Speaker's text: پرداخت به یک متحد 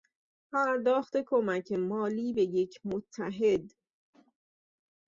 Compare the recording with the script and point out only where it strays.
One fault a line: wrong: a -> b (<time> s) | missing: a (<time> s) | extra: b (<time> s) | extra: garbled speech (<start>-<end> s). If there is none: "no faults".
extra: کمک مالی (1.3 s)